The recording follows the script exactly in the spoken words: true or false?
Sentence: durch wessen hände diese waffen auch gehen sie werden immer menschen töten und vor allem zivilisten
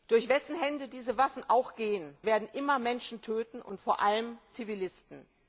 false